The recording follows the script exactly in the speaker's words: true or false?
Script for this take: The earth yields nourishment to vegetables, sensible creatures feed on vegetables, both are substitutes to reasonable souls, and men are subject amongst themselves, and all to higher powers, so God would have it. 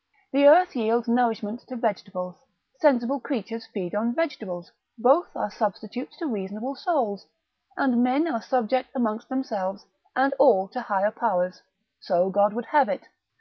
true